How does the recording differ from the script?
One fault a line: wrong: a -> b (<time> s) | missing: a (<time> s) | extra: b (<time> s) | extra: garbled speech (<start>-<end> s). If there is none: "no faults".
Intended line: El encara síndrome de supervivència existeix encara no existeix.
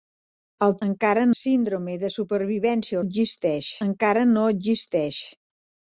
no faults